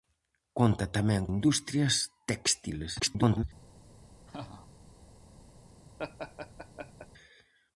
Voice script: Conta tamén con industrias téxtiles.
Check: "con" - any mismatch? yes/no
yes